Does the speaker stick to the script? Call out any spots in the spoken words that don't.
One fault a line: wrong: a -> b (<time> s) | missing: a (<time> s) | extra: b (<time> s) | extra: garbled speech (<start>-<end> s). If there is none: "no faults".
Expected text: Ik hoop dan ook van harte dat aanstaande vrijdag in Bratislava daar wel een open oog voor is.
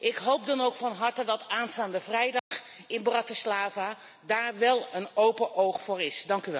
no faults